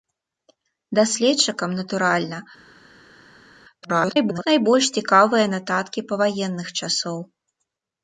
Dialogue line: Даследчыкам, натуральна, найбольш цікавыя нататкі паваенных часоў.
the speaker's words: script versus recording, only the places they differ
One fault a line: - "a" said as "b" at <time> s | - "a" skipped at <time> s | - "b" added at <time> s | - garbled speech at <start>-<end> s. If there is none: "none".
- garbled speech at 3.8-4.5 s